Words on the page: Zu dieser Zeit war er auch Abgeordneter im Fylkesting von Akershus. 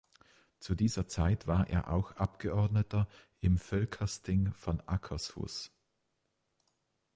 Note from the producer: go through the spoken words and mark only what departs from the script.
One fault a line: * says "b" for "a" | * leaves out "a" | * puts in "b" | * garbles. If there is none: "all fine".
all fine